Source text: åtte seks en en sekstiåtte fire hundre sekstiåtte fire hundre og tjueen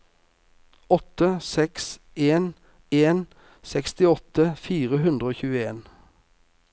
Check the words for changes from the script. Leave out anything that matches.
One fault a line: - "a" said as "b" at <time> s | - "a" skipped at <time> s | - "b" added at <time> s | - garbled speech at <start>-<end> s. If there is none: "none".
- "sekstiåtte fire hundre" skipped at 5.3 s